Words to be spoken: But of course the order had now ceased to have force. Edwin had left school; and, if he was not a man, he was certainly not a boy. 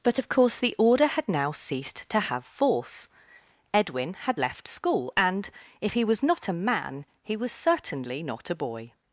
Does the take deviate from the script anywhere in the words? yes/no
no